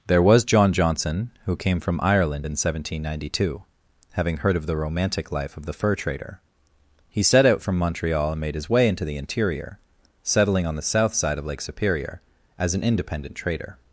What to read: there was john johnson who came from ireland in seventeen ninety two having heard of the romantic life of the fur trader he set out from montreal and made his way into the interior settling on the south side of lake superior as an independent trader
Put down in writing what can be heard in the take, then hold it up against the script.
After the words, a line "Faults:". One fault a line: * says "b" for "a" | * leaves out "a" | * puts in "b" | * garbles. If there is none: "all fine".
there was john johnson who came from ireland in seventeen ninety two having heard of the romantic life of the fur trader he set out from montreal and made his way into the interior settling on the south side of lake superior as an independent trader
Faults:
all fine